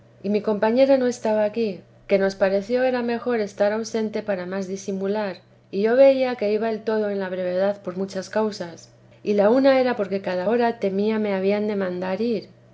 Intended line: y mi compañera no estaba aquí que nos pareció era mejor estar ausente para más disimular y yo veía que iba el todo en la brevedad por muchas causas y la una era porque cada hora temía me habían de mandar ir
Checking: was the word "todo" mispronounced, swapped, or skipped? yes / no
no